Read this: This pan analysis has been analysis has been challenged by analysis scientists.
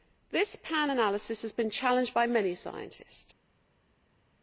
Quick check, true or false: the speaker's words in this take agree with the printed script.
false